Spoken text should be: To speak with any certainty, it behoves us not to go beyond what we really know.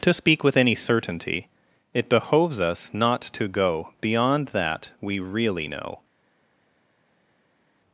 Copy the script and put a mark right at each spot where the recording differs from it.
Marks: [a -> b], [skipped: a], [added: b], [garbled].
To speak with any certainty, it behoves us not to go beyond [what -> that] we really know.